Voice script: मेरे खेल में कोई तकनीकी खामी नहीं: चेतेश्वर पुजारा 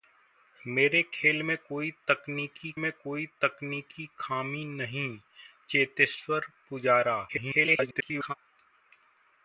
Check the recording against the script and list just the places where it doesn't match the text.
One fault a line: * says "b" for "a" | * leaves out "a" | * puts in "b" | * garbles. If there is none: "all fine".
* puts in "में कोई तकनीकी"
* garbles